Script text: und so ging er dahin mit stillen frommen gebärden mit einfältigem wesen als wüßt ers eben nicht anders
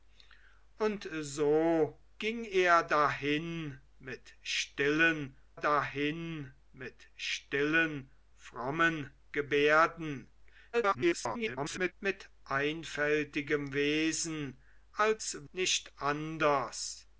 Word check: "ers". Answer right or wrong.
wrong